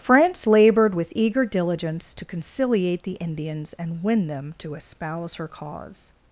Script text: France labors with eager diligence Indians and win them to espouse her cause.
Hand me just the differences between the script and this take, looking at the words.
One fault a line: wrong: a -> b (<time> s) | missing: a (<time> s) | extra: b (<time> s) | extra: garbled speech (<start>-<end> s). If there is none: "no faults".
wrong: labors -> labored (0.5 s)
extra: to conciliate the (2.1 s)